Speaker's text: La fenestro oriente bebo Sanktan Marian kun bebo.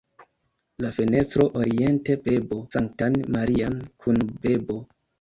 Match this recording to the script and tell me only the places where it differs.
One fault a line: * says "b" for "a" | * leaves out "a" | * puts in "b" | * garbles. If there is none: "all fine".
all fine